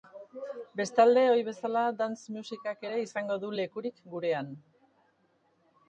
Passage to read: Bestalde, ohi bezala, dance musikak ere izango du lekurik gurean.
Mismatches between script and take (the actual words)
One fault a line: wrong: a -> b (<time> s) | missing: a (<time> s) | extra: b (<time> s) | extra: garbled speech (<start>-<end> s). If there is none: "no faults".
no faults